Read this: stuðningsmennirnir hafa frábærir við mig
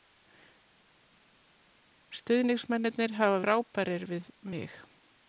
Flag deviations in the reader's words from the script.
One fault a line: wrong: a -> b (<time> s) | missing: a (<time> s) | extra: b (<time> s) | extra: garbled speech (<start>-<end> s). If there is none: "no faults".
no faults